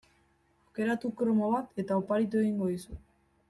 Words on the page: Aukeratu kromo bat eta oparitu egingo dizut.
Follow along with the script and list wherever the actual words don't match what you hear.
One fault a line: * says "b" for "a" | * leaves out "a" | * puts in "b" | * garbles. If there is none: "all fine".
all fine